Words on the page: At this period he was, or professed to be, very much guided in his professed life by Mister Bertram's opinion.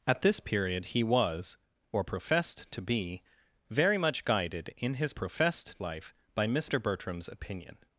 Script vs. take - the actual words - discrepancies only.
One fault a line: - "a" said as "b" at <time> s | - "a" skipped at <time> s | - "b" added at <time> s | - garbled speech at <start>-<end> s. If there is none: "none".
none